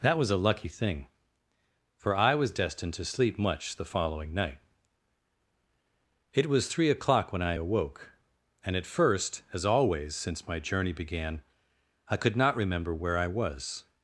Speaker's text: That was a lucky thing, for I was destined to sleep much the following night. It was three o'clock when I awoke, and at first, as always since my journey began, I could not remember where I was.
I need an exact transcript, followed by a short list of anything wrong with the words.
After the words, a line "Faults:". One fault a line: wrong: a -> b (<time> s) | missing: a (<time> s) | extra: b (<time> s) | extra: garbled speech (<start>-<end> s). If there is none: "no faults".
That was a lucky thing, for I was destined to sleep much the following night. It was three o'clock when I awoke, and at first, as always since my journey began, I could not remember where I was.
Faults:
no faults